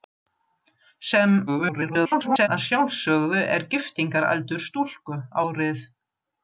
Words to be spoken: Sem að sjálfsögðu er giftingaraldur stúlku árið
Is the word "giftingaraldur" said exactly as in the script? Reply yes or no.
yes